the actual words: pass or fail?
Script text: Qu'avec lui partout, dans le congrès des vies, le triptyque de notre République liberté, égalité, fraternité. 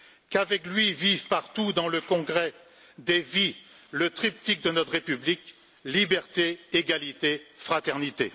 fail